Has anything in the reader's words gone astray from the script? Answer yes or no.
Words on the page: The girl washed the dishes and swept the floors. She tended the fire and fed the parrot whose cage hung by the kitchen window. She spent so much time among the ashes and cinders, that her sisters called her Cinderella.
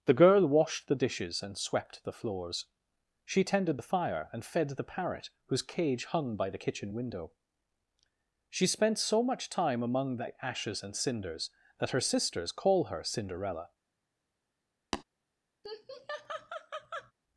yes